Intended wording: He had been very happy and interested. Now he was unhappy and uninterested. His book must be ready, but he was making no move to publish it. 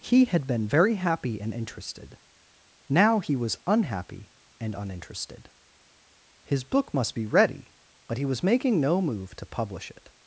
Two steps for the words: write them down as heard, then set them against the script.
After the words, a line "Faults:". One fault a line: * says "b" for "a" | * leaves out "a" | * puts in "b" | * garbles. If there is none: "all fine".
He had been very happy and interested. Now he was unhappy and uninterested. His book must be ready, but he was making no move to publish it.
Faults:
all fine